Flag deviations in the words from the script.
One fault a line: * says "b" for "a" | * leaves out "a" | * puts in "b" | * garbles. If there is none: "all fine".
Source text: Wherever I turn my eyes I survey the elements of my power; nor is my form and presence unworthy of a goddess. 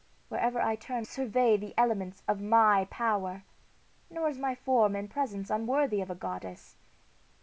* leaves out "my eyes I"